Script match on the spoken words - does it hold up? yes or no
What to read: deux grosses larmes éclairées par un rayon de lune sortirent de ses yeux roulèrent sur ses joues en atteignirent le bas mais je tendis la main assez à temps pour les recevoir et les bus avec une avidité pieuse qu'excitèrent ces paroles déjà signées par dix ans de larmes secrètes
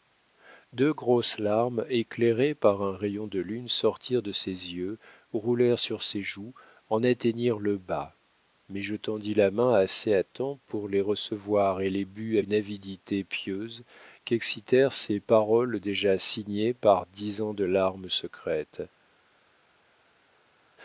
no